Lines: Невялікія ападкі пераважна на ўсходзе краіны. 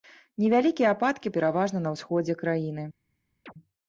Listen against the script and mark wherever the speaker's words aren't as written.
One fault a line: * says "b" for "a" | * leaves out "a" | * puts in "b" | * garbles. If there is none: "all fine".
all fine